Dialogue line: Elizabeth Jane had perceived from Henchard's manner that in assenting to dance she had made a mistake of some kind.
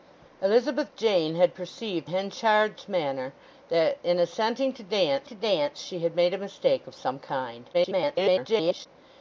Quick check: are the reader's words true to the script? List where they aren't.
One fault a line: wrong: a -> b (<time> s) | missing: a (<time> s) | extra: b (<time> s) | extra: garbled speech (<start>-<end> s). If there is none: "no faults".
missing: from (2.1 s)
extra: to dance (5.2 s)
extra: garbled speech (7.7-8.9 s)